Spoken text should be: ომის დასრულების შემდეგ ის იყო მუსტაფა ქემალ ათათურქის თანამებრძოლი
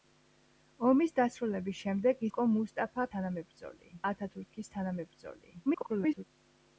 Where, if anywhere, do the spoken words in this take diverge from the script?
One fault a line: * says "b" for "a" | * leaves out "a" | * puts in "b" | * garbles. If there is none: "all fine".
* leaves out "ის"
* says "თანამებრძოლი" for "ქემალ"
* garbles